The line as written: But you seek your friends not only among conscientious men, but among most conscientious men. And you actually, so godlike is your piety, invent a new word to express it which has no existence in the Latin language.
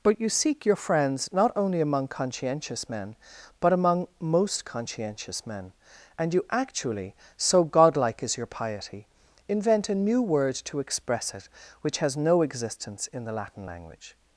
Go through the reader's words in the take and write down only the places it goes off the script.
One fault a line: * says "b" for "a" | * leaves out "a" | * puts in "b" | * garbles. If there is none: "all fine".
all fine